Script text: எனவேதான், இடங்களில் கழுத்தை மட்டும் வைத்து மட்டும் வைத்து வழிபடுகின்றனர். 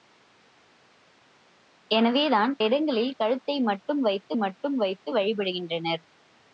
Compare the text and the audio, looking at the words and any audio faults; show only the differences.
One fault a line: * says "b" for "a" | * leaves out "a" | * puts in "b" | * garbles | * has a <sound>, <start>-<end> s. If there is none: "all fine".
all fine